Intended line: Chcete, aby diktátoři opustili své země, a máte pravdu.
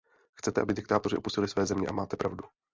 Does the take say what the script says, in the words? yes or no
yes